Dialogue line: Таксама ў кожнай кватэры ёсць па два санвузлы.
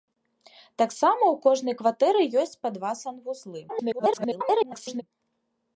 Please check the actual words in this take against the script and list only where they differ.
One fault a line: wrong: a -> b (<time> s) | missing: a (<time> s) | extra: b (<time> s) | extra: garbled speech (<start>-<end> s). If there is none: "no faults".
extra: garbled speech (3.7-5.0 s)